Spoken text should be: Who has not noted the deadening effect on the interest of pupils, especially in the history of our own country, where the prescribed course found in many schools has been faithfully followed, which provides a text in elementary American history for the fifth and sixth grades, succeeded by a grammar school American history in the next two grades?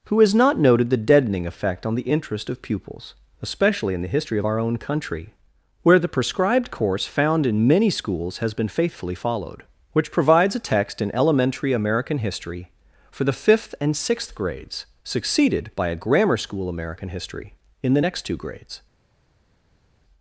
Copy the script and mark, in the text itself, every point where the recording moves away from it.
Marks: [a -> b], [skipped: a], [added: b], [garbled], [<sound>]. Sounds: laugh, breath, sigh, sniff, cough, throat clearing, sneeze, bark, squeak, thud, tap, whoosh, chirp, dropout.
Who has not noted the deadening effect on the interest of pupils, especially in the history of our own country, where the prescribed course found in many schools has been faithfully followed, which provides a text in elementary American history for the fifth and sixth grades, succeeded by a grammar school American history in the next two grades?